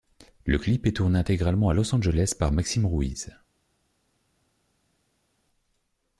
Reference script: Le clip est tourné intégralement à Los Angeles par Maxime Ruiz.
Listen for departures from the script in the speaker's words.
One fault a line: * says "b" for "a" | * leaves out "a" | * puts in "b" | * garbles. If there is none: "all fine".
all fine